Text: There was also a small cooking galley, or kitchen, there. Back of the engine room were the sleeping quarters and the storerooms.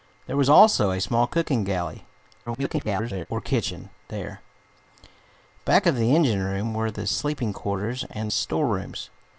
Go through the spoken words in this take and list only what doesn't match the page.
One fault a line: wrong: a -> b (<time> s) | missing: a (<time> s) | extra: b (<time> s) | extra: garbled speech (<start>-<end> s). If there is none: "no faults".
extra: garbled speech (2.5-3.3 s)
missing: the (8.3 s)